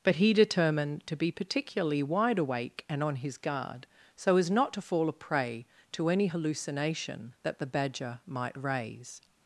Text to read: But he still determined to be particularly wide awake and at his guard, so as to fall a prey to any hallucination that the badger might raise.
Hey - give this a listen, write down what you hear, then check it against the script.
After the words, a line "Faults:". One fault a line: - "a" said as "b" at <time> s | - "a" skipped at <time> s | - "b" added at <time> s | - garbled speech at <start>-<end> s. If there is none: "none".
But he determined to be particularly wide awake and on his guard, so as not to fall a prey to any hallucination that the badger might raise.
Faults:
- "still" skipped at 0.3 s
- "at" said as "on" at 3.0 s
- "not" added at 4.5 s